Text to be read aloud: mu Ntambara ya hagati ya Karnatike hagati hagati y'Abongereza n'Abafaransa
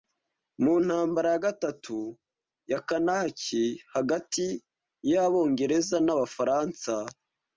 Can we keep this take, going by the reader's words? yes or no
no